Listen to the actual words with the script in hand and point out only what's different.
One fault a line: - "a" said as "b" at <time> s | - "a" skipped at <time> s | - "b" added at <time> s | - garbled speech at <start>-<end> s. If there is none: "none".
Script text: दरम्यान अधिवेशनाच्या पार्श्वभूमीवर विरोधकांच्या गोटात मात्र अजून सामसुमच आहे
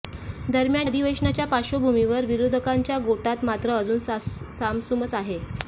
none